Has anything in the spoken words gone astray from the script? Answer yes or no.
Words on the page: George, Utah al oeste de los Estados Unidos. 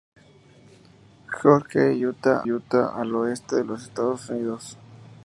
yes